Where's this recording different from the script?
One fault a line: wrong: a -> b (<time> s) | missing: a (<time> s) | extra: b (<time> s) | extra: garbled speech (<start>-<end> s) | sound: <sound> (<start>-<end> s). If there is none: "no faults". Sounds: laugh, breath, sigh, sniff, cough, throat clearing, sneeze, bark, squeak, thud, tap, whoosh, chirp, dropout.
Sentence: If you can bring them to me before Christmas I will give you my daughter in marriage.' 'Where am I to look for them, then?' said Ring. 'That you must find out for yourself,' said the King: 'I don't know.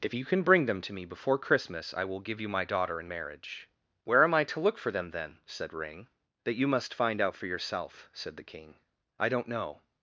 no faults